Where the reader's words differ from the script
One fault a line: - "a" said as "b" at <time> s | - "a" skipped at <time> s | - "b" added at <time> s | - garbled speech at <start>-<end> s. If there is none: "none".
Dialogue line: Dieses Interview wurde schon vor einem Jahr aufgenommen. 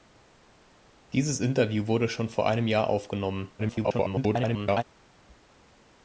- garbled speech at 3.6-4.8 s